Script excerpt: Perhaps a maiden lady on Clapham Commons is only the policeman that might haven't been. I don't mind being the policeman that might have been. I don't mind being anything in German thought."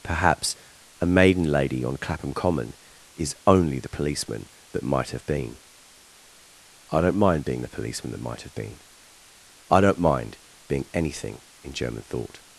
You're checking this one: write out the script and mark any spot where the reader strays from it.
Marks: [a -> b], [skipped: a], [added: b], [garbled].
Perhaps a maiden lady on Clapham [Commons -> Common] is only the policeman that might [haven't -> have] been. I don't mind being the policeman that might have been. I don't mind being anything in German thought."